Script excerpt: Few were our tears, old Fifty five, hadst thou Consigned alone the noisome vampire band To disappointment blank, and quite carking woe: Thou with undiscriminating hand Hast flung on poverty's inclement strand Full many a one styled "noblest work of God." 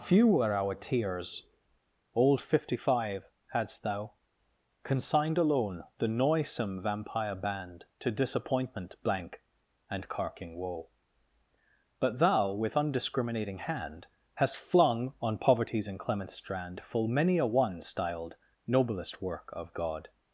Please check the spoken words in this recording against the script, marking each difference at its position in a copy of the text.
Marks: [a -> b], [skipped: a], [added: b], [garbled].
Few were our tears, old Fifty five, hadst thou Consigned alone the noisome vampire band To disappointment blank, and [skipped: quite] carking woe: [added: But] Thou with undiscriminating hand Hast flung on poverty's inclement strand Full many a one styled "noblest work of God."